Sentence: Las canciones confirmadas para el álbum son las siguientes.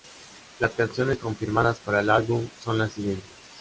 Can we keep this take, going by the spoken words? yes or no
yes